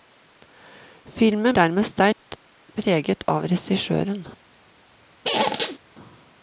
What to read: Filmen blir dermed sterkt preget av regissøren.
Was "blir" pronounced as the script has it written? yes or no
no